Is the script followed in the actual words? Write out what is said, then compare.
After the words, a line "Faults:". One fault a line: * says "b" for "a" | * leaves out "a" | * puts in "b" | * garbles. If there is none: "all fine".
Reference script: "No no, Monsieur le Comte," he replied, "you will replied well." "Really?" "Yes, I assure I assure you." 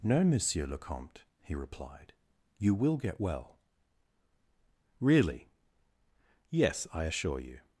"No, Monsieur le Comte," he replied, "you will get well." "Really?" "Yes, I assure you."
Faults:
* leaves out "no"
* says "get" for "replied"
* leaves out "I assure"